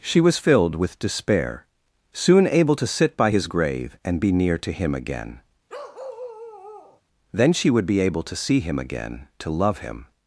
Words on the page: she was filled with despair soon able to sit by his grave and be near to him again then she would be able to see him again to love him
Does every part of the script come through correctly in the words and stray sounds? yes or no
no